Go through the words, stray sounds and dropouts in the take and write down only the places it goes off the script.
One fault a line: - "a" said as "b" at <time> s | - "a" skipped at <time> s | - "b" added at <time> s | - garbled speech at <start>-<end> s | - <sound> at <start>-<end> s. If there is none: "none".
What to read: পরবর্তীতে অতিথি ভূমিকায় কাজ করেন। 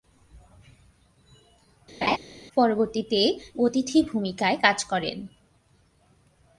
- laugh at 2.0-2.2 s